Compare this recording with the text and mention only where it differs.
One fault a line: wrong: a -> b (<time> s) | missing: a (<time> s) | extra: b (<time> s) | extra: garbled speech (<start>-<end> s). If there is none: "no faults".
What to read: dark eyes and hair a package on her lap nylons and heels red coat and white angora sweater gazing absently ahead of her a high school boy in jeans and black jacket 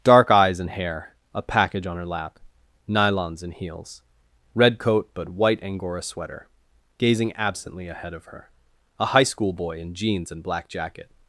wrong: and -> but (5.1 s)